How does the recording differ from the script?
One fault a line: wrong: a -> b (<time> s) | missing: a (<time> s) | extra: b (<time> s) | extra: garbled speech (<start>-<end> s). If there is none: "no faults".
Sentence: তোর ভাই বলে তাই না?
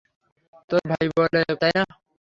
no faults